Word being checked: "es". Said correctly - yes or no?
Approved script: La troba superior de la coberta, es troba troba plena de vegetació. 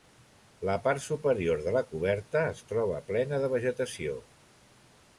yes